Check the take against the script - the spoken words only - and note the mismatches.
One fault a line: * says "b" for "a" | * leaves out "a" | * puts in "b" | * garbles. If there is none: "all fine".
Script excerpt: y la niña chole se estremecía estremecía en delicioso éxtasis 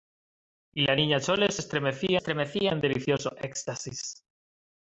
all fine